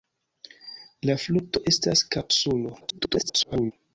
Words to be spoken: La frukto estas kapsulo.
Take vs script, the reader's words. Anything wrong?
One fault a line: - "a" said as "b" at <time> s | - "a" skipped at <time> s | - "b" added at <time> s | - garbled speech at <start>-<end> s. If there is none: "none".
- garbled speech at 2.8-3.7 s